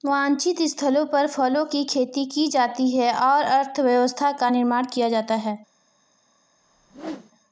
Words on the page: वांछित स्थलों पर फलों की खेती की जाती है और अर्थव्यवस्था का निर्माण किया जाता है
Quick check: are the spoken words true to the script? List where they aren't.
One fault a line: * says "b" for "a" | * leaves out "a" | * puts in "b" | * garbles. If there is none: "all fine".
all fine